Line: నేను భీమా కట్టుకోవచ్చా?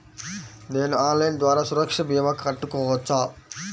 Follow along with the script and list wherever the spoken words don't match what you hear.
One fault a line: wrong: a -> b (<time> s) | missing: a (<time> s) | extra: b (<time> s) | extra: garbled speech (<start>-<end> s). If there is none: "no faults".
extra: ఆన్లైన్ ద్వారా సురక్ష (1.0 s)